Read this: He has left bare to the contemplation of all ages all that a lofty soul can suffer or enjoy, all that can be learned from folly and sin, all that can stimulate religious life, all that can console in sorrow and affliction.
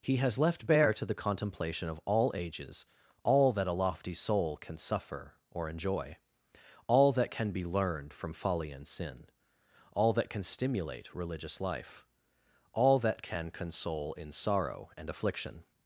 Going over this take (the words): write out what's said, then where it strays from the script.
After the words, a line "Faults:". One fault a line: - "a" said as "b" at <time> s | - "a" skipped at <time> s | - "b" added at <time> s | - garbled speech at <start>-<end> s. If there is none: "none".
He has left bare to the contemplation of all ages all that a lofty soul can suffer or enjoy, all that can be learned from folly and sin, all that can stimulate religious life, all that can console in sorrow and affliction.
Faults:
none